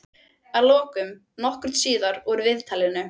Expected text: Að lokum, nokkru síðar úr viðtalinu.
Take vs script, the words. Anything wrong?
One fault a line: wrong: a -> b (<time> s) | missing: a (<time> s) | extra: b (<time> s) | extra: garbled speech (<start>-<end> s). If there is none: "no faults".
no faults